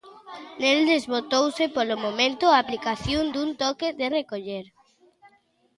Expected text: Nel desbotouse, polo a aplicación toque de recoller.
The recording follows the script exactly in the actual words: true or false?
false